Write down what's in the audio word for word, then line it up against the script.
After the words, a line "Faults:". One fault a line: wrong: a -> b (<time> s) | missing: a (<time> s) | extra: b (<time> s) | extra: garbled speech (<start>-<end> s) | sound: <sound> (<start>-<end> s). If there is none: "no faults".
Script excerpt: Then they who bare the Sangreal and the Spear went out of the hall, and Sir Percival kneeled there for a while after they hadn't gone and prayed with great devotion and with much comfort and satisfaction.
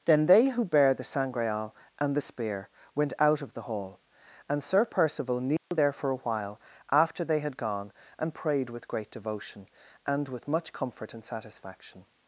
Then they who bare the Sangreal and the Spear went out of the hall, and Sir Percival kneeled there for a while after they had gone and prayed with great devotion and with much comfort and satisfaction.
Faults:
sound: dropout (5.6-5.7 s)
wrong: hadn't -> had (7.4 s)